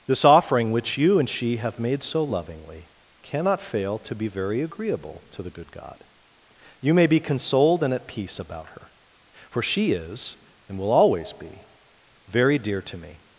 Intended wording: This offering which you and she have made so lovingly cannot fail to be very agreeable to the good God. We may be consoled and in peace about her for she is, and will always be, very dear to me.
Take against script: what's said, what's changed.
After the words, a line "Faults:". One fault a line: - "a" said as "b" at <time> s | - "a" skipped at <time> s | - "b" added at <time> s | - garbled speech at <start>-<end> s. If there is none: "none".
This offering which you and she have made so lovingly cannot fail to be very agreeable to the good God. You may be consoled and at peace about her for she is, and will always be, very dear to me.
Faults:
- "We" said as "You" at 6.8 s
- "in" said as "at" at 7.9 s